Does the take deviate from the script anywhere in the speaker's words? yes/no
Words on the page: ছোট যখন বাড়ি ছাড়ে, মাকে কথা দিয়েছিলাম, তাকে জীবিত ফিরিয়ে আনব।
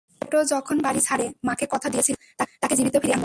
no